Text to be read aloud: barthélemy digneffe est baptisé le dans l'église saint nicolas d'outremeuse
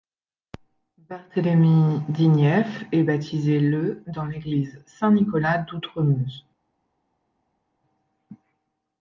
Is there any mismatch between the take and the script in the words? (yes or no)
no